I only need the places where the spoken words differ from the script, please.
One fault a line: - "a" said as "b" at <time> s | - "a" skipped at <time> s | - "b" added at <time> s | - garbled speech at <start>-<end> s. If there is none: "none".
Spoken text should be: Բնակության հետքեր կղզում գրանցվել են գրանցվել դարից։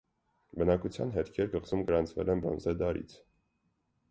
- "գրանցվել" said as "բրոնզե" at 2.4 s